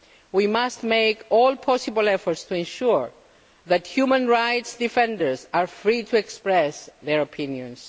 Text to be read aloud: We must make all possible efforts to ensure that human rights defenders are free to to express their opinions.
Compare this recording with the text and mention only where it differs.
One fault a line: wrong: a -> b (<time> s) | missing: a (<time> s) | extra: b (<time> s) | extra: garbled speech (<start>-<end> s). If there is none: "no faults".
missing: to (6.2 s)